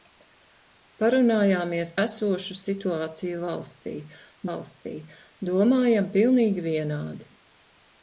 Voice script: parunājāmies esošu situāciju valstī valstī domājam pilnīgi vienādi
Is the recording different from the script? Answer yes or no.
no